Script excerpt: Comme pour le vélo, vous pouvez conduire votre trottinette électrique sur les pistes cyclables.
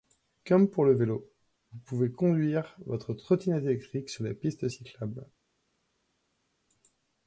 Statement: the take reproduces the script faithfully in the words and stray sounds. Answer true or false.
true